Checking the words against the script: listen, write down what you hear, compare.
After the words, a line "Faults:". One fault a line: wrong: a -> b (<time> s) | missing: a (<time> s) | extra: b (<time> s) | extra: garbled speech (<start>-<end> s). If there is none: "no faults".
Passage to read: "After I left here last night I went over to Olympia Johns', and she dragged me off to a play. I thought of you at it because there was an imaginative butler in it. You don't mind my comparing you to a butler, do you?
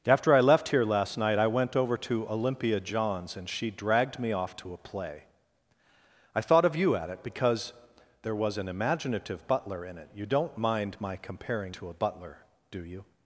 "After I left here last night I went over to Olympia Johns', and she dragged me off to a play. I thought of you at it because there was an imaginative butler in it. You don't mind my comparing to a butler, do you?
Faults:
missing: you (11.8 s)